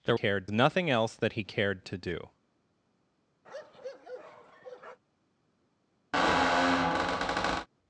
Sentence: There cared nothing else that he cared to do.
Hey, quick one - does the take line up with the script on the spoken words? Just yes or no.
yes